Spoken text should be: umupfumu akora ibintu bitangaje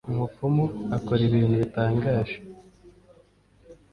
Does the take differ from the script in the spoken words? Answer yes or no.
no